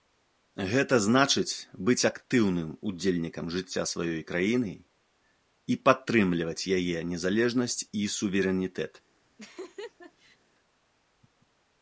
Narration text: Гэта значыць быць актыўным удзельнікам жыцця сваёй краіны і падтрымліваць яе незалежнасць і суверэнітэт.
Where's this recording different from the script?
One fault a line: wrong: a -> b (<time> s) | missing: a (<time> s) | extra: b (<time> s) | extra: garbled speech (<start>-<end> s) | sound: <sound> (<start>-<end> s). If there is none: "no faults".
sound: laugh (9.4-10.4 s)